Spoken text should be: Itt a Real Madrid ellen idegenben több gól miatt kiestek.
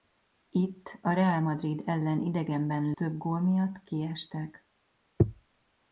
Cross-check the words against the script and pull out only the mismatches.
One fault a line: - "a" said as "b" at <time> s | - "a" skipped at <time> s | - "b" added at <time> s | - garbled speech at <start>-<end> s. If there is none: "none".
none